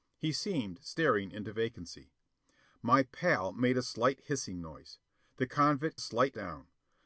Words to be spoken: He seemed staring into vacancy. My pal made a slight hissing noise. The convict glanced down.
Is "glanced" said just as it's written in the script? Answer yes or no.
no